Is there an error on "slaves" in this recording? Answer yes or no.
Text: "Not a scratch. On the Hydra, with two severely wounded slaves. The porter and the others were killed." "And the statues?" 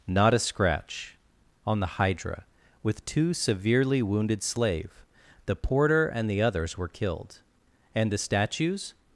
yes